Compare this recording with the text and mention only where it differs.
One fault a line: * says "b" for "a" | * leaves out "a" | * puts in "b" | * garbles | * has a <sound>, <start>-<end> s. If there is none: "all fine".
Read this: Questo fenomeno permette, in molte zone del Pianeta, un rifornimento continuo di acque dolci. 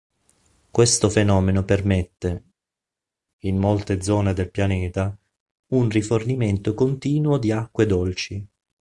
all fine